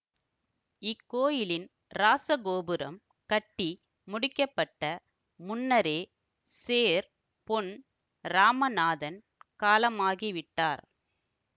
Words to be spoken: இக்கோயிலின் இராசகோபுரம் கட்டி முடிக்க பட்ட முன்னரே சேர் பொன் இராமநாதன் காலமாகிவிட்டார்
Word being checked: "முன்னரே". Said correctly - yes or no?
yes